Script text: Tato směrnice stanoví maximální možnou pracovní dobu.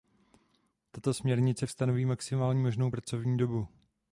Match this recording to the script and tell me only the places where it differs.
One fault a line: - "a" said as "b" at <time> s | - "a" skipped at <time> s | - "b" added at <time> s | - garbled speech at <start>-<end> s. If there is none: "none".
none